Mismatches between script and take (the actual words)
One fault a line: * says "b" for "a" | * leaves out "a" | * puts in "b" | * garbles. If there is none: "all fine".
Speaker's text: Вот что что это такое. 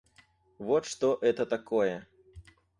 * leaves out "что"